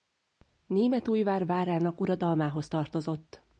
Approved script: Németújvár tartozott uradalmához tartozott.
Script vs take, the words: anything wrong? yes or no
yes